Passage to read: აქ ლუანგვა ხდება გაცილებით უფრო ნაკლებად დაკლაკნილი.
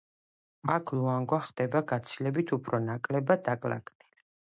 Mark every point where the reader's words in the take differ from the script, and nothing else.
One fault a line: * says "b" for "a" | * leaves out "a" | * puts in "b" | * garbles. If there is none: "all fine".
all fine